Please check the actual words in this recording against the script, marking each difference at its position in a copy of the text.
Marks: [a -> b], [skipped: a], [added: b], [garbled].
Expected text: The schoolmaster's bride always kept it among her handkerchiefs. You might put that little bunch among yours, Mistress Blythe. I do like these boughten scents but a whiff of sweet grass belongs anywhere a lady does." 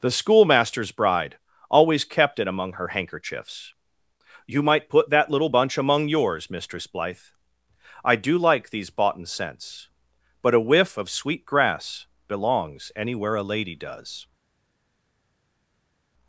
The schoolmaster's bride always kept it among her handkerchiefs. You might put that little bunch among yours, Mistress Blythe. I do like these boughten scents but a whiff of sweet grass belongs anywhere a lady does."